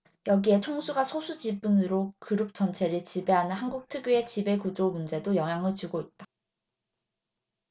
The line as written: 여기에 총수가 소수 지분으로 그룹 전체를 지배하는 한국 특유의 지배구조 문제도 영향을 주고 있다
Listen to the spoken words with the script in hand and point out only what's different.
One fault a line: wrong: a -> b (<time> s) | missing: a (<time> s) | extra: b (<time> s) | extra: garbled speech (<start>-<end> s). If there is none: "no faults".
no faults